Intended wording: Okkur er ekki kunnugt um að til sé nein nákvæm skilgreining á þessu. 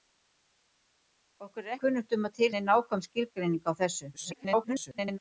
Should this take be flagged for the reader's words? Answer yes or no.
yes